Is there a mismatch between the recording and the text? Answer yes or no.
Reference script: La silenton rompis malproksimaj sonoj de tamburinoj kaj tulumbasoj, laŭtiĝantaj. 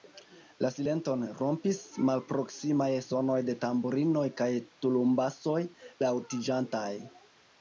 no